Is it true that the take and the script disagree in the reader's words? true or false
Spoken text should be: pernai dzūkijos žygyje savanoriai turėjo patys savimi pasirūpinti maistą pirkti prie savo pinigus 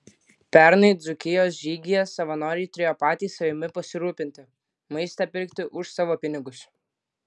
true